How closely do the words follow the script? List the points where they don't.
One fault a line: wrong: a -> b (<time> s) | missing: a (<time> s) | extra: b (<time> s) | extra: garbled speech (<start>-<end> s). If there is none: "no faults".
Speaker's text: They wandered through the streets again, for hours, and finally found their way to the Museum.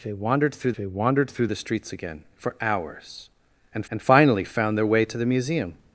extra: they wandered through (0.8 s)
extra: and (3.9 s)